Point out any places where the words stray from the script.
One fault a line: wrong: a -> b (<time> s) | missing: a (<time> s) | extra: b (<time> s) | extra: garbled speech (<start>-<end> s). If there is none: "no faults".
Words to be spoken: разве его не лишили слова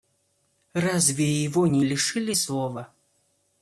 no faults